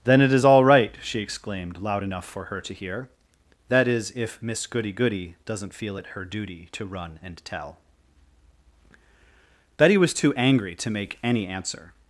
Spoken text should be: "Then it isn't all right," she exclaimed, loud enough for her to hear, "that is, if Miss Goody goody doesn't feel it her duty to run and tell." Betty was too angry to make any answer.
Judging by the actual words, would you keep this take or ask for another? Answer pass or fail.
fail